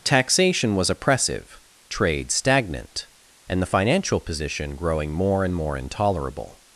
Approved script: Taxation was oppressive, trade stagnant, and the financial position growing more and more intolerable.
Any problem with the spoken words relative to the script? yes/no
no